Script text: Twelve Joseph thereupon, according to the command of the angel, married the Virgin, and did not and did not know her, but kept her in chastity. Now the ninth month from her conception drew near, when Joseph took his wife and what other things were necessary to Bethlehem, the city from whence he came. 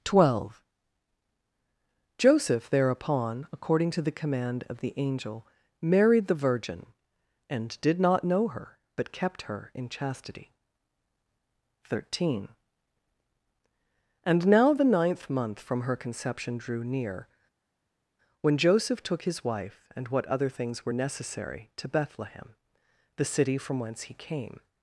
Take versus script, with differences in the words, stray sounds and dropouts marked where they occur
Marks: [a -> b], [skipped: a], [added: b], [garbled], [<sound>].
Twelve Joseph thereupon, according to the command of the angel, married the Virgin, and did not [skipped: and did not] know her, but kept her in chastity. [added: Thirteen And] Now the ninth month from her conception drew near, when Joseph took his wife and what other things were necessary to Bethlehem, the city from whence he came.